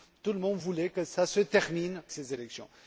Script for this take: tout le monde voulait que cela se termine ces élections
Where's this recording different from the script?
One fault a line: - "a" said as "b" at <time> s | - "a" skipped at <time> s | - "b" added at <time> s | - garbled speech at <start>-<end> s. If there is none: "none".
none